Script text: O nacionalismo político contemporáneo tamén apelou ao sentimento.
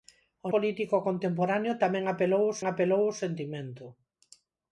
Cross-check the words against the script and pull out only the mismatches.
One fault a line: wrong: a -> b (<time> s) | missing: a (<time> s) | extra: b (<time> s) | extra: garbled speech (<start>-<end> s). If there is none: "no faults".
missing: nacionalismo (0.5 s)
extra: apelou ao (2.6 s)